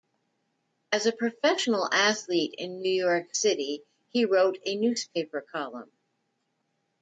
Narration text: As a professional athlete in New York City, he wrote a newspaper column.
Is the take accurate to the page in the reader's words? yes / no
yes